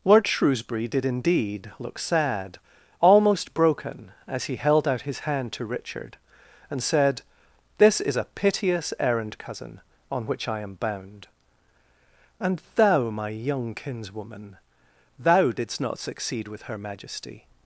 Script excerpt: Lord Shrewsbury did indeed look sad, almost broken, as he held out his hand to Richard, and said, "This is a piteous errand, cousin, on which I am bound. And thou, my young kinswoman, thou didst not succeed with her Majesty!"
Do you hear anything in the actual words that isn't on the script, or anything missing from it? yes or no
no